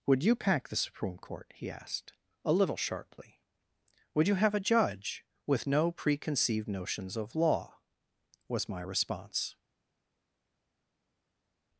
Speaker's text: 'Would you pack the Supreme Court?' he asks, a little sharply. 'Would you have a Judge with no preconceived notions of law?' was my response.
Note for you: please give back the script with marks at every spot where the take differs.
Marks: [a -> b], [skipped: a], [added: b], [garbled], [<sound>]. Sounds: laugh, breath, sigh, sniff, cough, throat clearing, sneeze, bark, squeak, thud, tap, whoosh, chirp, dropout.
'Would you pack the Supreme Court?' he [asks, -> asked] a little sharply. 'Would you have a Judge with no preconceived notions of law?' was my response.